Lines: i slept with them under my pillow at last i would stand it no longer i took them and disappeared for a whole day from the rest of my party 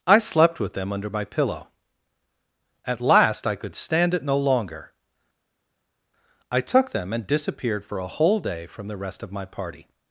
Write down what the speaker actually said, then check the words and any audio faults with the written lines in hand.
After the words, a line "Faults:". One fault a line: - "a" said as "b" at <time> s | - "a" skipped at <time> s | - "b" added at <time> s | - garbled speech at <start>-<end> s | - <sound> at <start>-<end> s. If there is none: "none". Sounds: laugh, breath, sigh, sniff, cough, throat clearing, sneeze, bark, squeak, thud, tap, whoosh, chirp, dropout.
i slept with them under my pillow at last i could stand it no longer i took them and disappeared for a whole day from the rest of my party
Faults:
- "would" said as "could" at 3.5 s